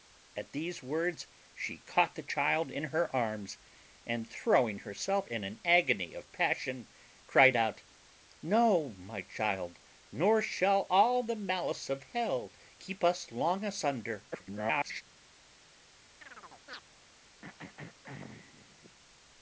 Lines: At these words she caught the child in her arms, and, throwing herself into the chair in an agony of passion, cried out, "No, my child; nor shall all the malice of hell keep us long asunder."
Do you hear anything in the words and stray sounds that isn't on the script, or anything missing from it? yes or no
yes